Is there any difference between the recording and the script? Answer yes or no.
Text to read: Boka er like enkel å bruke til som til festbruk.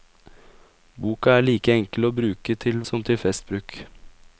no